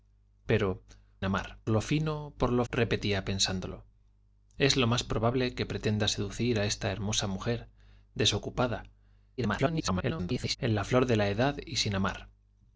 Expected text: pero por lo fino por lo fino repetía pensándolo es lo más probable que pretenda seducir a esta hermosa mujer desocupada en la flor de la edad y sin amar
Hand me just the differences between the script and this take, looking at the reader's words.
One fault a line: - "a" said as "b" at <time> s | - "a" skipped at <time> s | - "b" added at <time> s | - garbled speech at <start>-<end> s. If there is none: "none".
- "por" said as "amar" at 1.2 s
- "fino" skipped at 2.6 s
- garbled speech at 9.4-10.6 s